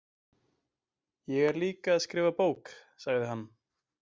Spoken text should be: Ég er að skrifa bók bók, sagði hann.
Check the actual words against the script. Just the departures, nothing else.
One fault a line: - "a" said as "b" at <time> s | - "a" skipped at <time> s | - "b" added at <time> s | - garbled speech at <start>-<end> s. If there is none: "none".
- "líka" added at 1.6 s
- "bók" skipped at 2.7 s